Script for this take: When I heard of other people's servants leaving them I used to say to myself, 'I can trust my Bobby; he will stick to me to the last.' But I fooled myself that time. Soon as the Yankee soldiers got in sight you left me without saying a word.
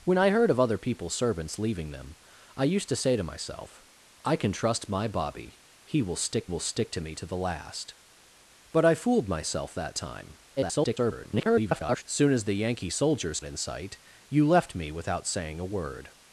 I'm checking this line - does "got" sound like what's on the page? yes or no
no